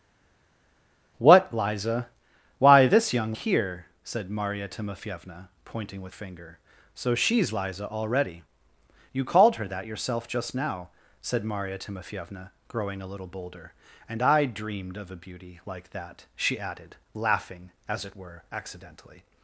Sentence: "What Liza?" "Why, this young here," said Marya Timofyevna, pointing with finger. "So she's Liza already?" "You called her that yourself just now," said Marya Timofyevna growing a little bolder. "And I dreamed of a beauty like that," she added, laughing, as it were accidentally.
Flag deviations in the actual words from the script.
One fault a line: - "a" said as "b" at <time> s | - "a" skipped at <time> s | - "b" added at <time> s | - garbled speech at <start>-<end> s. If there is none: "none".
none